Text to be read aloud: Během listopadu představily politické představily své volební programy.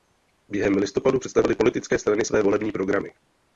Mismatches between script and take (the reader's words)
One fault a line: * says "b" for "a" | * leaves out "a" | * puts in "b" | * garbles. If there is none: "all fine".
* says "strany" for "představily"